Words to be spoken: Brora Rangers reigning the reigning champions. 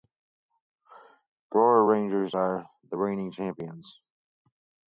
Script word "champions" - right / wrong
right